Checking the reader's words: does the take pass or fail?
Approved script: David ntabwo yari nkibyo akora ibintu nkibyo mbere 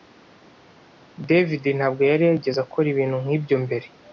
fail